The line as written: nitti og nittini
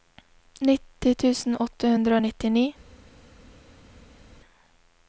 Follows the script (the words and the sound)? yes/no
no